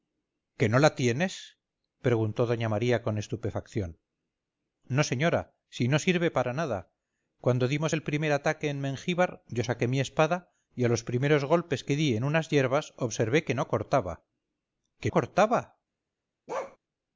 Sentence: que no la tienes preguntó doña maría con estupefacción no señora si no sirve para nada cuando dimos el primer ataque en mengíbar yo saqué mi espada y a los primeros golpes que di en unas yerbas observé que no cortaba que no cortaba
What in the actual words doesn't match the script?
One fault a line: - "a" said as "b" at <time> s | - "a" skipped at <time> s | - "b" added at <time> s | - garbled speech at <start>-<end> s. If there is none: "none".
- "no" skipped at 15.1 s